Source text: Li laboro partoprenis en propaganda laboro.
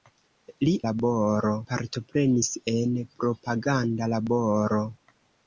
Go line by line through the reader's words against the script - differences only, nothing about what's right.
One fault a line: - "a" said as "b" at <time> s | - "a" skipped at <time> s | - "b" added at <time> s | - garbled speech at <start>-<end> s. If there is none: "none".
none